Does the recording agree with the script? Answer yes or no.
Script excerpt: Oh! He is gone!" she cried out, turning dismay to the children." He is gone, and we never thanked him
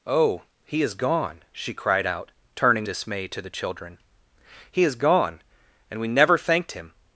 yes